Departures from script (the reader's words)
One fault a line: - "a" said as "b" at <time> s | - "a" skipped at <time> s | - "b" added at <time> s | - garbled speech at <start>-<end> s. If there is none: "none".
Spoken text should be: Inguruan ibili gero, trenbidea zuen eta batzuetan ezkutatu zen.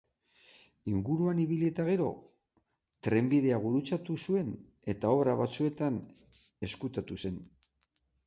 - "eta" added at 1.7 s
- "gurutzatu" added at 3.7 s
- "obra" added at 5.2 s